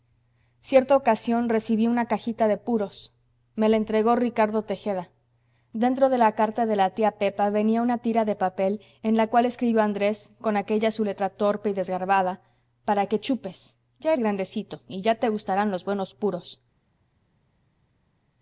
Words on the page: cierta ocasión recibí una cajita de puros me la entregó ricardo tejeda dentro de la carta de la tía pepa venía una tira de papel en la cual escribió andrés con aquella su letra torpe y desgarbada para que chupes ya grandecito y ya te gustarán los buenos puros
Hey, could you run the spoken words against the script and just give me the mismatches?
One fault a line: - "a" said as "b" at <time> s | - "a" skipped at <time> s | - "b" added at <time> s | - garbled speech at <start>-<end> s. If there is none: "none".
none